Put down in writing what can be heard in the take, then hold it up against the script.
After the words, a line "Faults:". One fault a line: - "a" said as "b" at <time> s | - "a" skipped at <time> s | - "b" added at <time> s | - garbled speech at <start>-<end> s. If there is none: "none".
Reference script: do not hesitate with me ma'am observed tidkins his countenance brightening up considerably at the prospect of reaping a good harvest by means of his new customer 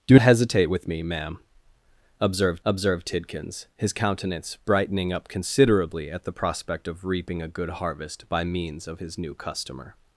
do hesitate with me ma'am observed observed tidkins his countenance brightening up considerably at the prospect of reaping a good harvest by means of his new customer
Faults:
- "not" skipped at 0.2 s
- "observed" added at 2.6 s